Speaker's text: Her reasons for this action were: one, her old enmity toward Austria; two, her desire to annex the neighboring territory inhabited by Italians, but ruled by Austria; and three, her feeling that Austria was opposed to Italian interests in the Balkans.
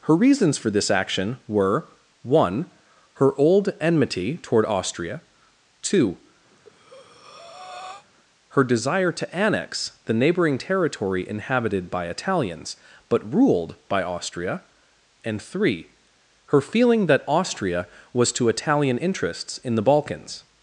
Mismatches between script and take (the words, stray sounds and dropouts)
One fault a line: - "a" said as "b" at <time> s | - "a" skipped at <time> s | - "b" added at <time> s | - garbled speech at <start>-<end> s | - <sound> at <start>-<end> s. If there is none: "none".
- breath at 6.5-8.1 s
- "opposed" skipped at 18.3 s